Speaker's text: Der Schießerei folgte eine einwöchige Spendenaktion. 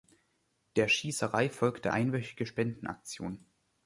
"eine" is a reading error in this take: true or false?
true